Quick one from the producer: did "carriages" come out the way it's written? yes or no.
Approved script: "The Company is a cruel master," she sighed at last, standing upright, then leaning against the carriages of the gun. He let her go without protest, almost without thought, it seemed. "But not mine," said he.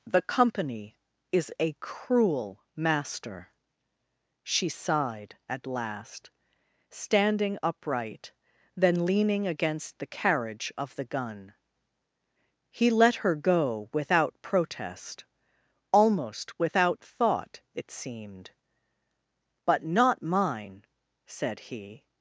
no